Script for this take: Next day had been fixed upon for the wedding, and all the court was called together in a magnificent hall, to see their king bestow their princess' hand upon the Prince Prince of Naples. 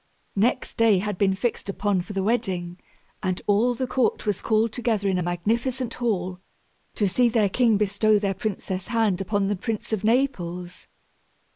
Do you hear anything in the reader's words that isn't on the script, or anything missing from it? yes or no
yes